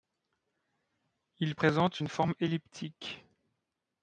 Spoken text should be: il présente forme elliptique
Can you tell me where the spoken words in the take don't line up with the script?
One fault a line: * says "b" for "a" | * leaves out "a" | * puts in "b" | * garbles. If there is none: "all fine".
* puts in "une"